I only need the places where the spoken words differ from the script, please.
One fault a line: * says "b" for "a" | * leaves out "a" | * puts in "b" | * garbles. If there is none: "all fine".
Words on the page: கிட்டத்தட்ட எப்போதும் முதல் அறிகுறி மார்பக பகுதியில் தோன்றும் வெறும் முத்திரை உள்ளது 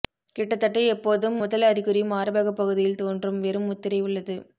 all fine